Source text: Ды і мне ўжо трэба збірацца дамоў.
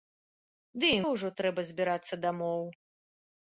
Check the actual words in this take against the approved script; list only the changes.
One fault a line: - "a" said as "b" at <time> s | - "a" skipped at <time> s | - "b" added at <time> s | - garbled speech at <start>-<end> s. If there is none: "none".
- "мне" skipped at 1.0 s